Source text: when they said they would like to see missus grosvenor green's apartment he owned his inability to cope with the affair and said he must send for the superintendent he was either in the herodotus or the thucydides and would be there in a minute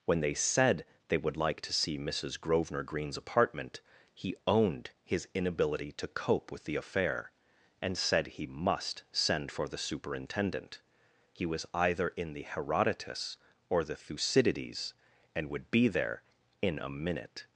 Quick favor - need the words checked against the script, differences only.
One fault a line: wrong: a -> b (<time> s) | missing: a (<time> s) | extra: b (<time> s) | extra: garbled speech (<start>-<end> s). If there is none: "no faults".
no faults